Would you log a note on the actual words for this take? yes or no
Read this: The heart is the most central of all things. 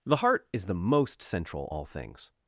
yes